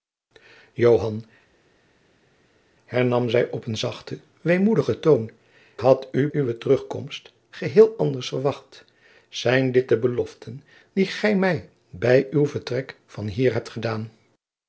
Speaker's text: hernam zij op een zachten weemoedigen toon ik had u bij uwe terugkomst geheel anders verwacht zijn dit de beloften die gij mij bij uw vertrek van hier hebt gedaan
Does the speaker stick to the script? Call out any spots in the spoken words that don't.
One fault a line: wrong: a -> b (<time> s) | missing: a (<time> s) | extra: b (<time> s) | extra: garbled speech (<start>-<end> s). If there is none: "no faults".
missing: ik (5.3 s)
missing: bij (6.3 s)